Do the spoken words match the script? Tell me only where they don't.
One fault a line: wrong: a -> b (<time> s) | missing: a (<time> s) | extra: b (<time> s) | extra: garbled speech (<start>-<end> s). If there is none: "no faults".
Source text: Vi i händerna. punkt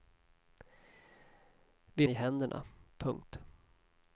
no faults